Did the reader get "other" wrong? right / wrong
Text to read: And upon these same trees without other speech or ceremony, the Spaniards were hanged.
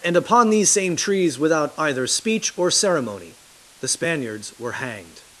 wrong